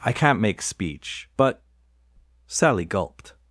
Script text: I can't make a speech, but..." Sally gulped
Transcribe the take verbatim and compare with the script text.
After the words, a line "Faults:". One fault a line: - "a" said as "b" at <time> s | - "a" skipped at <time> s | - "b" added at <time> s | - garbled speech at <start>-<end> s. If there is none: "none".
I can't make speech, but..." Sally gulped
Faults:
- "a" skipped at 0.6 s